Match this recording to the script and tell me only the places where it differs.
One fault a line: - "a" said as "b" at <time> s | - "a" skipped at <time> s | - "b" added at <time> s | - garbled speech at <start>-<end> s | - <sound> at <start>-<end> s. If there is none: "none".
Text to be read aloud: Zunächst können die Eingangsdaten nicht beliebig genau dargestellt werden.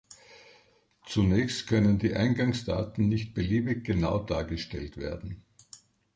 none